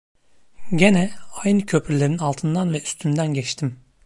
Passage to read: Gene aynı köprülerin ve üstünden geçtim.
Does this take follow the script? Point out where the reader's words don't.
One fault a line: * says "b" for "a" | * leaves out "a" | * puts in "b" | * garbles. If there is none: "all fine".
* puts in "altından"